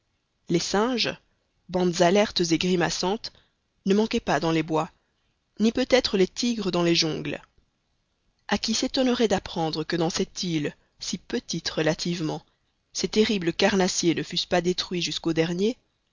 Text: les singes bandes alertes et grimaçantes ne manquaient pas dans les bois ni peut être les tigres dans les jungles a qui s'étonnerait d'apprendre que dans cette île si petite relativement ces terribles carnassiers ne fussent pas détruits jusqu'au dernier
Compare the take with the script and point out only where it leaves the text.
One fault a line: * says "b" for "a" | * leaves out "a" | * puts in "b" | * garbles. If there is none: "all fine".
all fine